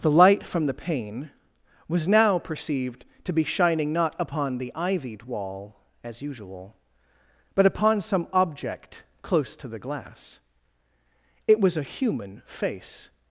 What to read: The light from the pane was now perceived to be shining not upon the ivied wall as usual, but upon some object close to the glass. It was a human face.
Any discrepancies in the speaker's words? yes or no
no